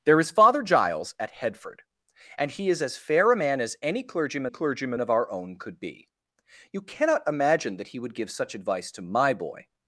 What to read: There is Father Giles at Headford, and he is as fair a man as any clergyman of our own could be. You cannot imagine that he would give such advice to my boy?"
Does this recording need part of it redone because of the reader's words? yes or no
yes